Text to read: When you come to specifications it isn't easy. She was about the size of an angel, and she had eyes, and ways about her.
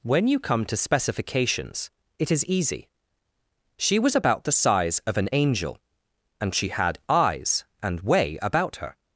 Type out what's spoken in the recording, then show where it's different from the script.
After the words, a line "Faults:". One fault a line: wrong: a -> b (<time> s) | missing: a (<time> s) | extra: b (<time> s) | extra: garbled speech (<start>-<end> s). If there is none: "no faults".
When you come to specifications it is easy. She was about the size of an angel, and she had eyes, and way about her.
Faults:
wrong: isn't -> is (2.3 s)
wrong: ways -> way (8.0 s)